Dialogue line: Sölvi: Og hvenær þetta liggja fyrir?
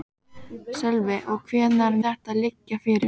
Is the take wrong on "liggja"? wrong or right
right